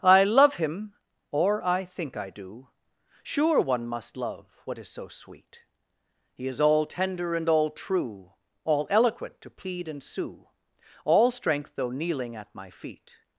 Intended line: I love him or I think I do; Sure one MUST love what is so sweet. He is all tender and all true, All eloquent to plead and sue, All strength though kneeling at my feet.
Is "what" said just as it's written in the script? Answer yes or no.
yes